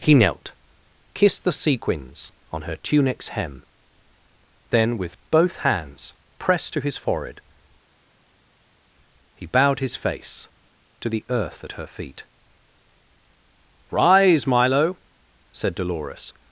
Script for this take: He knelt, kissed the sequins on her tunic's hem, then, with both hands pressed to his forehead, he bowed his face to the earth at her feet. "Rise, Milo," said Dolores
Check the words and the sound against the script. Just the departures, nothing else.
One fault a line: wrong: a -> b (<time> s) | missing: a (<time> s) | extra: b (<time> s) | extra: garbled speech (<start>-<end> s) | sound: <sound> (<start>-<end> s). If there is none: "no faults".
no faults